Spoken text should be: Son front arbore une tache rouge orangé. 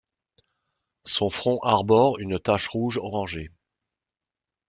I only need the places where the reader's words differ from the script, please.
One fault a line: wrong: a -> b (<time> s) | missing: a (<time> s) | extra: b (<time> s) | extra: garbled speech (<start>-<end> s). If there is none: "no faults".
no faults